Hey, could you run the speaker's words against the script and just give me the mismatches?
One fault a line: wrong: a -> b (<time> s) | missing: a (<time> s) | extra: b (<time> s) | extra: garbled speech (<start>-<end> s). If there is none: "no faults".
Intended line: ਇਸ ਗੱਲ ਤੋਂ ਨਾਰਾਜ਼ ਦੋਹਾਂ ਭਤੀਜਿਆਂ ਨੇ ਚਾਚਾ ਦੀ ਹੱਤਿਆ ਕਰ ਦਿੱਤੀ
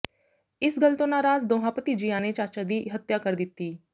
no faults